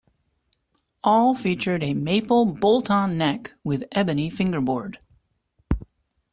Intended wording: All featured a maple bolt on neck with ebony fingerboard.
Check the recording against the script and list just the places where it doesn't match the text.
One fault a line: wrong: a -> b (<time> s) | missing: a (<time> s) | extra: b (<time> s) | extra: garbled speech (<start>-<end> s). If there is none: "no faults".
no faults